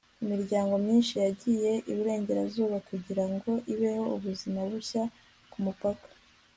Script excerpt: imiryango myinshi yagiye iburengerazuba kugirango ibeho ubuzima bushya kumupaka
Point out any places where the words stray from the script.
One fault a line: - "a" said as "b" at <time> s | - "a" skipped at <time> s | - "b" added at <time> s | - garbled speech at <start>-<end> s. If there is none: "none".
none